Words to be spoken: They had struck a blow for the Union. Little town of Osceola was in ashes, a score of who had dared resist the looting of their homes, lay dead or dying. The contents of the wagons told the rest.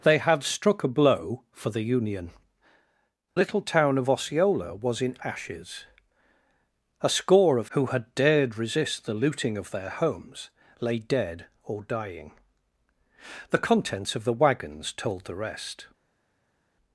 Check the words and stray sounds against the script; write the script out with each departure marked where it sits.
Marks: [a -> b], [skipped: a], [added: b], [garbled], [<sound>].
They had struck a blow for the Union. Little town of Osceola was in ashes, a score of who had dared resist the looting of their homes, lay dead or dying. The contents of the wagons told the rest.